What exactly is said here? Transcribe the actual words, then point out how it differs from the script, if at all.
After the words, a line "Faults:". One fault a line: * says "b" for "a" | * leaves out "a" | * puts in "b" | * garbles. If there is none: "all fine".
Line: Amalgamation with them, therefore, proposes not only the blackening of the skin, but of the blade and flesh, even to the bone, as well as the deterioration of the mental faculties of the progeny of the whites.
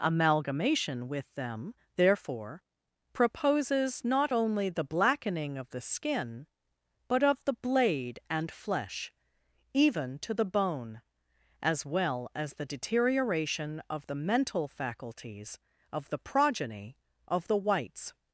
Amalgamation with them, therefore, proposes not only the blackening of the skin, but of the blade and flesh, even to the bone, as well as the deterioration of the mental faculties of the progeny of the whites.
Faults:
all fine